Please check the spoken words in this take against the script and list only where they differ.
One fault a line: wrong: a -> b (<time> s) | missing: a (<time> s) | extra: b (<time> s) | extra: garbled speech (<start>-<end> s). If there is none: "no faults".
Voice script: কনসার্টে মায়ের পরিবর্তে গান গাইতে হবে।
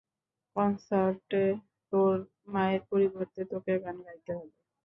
extra: তোর (1.9 s)
extra: তোকে (3.5 s)